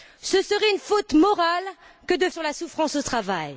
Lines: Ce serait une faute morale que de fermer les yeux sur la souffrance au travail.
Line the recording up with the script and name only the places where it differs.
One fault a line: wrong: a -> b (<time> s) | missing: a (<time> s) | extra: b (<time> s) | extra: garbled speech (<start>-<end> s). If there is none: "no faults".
missing: fermer les yeux (2.3 s)